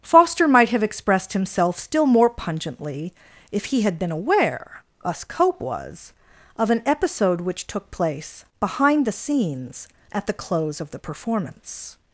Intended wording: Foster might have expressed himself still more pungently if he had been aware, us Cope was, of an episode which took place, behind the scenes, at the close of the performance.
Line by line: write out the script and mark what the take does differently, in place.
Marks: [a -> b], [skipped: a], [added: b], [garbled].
Foster might have expressed himself still more pungently if he had been aware, us Cope was, of an episode which took place, behind the scenes, at the close of the performance.